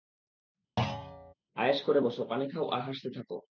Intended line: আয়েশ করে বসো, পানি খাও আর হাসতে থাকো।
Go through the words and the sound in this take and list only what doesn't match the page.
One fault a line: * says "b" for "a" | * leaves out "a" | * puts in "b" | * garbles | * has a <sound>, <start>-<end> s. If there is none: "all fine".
* has a thud, 0.8-1.3 s